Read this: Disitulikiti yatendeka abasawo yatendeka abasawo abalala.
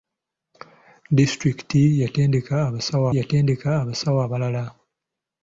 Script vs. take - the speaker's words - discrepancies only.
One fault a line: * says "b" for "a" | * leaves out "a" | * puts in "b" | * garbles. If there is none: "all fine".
all fine